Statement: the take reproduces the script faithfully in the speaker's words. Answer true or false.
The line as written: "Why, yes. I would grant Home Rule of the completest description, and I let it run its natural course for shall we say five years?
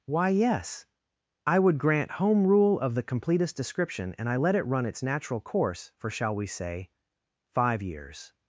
true